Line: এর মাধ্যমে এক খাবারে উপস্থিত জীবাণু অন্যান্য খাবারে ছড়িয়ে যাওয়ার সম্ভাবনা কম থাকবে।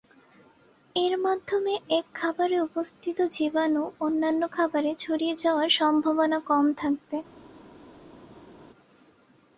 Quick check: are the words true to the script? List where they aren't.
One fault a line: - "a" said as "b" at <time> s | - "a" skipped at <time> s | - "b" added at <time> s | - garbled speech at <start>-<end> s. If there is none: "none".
none